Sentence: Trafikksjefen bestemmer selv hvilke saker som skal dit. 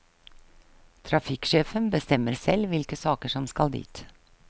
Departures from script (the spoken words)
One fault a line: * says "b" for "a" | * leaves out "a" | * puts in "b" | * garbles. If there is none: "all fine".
all fine